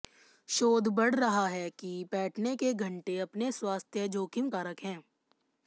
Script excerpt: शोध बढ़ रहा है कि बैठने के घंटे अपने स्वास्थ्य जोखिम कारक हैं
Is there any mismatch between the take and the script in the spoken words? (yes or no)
no